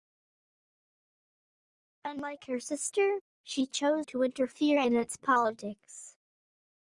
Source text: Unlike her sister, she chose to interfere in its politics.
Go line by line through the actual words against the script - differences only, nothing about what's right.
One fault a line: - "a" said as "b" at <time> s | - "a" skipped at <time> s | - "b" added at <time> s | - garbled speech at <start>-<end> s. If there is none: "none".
none